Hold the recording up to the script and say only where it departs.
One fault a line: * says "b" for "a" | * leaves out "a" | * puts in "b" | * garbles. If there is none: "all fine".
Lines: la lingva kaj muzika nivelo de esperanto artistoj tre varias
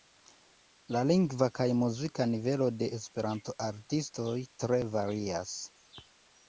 all fine